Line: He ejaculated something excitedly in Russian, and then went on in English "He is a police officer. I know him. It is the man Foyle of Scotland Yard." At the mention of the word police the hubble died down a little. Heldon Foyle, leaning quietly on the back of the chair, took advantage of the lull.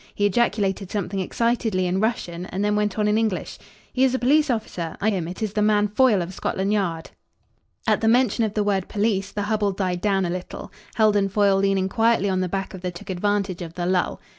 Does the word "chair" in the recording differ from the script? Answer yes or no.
yes